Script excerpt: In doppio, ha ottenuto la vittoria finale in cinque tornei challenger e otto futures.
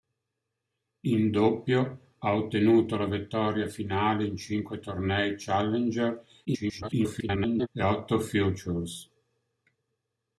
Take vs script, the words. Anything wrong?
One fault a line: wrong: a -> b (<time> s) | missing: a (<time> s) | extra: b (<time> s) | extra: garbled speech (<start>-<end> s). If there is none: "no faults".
extra: garbled speech (6.4-7.7 s)